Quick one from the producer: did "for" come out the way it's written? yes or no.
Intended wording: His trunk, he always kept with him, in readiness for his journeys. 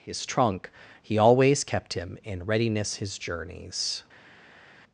no